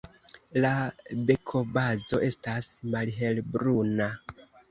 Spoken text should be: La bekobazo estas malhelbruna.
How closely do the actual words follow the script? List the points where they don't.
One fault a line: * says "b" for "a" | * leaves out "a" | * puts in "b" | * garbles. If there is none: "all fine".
all fine